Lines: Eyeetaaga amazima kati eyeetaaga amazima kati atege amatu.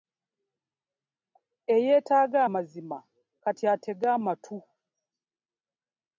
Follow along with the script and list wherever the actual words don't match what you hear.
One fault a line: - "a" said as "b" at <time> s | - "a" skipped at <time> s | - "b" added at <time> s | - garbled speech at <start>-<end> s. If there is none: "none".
- "eyeetaaga amazima kati" skipped at 3.6 s